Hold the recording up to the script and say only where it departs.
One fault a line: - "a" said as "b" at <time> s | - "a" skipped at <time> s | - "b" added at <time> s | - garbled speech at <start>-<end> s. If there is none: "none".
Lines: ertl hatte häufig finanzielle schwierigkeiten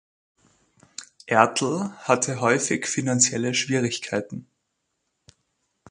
none